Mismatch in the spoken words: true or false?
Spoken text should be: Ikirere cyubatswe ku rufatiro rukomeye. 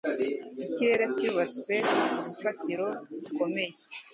false